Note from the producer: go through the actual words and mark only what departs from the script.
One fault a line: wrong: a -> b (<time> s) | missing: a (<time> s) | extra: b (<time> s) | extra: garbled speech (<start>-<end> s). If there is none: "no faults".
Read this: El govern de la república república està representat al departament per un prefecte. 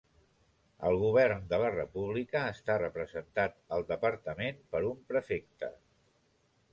missing: república (2.4 s)